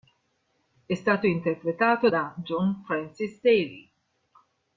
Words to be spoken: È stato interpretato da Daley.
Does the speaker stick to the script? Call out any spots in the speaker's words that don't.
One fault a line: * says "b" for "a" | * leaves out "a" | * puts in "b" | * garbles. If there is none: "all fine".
* puts in "John Francis"